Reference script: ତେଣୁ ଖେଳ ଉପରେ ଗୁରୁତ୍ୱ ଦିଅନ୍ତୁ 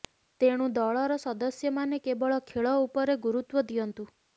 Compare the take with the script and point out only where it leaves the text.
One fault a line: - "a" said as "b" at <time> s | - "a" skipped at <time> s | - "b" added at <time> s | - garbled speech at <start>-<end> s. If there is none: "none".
- "ଦଳର ସଦସ୍ୟମାନେ କେବଳ" added at 0.7 s